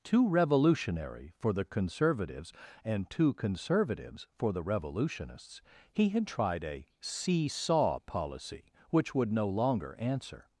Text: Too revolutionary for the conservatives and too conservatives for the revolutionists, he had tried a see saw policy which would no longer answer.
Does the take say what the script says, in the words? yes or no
yes